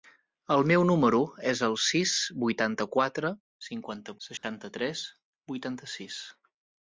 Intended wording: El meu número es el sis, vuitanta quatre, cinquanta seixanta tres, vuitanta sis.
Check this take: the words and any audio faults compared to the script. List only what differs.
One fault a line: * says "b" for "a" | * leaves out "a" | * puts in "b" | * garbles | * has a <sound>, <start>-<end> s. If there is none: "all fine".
* has a dropout, 4.4-4.4 s